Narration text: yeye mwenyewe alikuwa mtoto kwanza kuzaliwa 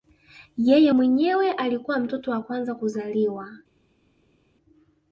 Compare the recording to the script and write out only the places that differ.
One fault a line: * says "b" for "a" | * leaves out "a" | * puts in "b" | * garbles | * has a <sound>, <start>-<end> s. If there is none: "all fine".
* puts in "wa"